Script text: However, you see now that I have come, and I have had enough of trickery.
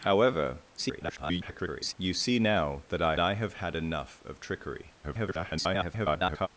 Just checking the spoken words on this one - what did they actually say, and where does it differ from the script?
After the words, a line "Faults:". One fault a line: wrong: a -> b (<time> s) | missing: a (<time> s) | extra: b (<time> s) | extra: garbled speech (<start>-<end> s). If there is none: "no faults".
However, [garbled] you see now that I I have had enough of trickery. [garbled]
Faults:
extra: garbled speech (0.8-1.9 s)
missing: have come and (3.2 s)
extra: garbled speech (5.0-6.5 s)